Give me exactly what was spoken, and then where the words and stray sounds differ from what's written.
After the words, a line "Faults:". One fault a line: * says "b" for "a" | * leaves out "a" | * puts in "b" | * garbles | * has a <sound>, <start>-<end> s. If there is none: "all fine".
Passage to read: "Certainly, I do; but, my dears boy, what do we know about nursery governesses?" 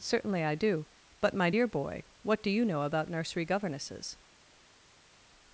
"Certainly, I do; but, my dear boy, what do you know about nursery governesses?"
Faults:
* says "dear" for "dears"
* says "you" for "we"